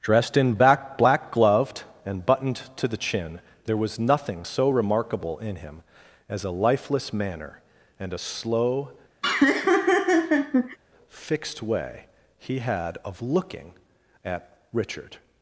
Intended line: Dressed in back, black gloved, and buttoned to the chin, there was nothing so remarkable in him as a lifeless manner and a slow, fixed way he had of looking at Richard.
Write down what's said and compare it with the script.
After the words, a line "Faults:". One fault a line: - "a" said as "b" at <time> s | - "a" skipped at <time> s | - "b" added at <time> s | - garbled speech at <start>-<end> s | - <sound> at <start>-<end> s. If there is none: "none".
Dressed in back, black gloved, and buttoned to the chin, there was nothing so remarkable in him as a lifeless manner and a slow, fixed way he had of looking at Richard.
Faults:
- laugh at 9.2-10.8 s